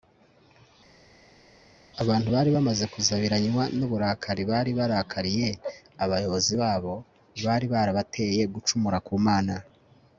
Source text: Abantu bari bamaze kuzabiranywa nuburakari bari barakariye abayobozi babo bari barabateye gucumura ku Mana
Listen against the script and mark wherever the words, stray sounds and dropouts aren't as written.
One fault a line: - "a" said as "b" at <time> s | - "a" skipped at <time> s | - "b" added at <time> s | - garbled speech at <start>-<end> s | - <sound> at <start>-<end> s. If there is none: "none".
none